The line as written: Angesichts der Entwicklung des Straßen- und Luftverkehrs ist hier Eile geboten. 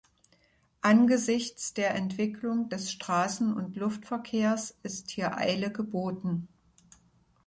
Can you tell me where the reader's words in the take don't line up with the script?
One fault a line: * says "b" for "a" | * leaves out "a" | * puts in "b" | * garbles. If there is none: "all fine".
all fine